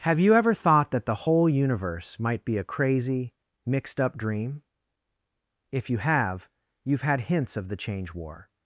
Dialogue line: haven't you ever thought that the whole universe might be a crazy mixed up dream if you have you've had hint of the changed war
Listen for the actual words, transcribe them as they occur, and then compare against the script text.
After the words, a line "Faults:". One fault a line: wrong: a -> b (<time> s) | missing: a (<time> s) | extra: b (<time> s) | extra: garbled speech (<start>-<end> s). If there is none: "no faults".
have you ever thought that the whole universe might be a crazy mixed up dream if you have you've had hints of the change war
Faults:
wrong: haven't -> have (0.1 s)
wrong: hint -> hints (7.2 s)
wrong: changed -> change (7.8 s)